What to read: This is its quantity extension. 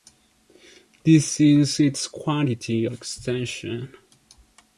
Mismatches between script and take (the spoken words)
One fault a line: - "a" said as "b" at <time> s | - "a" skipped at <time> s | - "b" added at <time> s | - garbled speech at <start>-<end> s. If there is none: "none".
none